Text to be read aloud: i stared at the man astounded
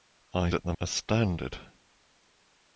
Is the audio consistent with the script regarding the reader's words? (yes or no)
no